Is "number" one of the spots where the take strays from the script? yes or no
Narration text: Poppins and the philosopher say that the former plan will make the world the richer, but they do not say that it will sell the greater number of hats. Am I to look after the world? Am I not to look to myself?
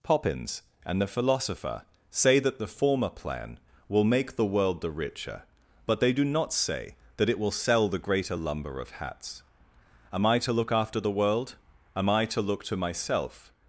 yes